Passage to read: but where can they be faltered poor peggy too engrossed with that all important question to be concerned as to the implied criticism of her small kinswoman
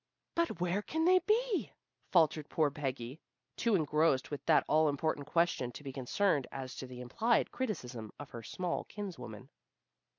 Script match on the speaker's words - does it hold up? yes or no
yes